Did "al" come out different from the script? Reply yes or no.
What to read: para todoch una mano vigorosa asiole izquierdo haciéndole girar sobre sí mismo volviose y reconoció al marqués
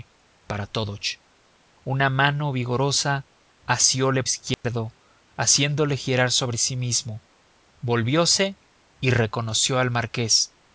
no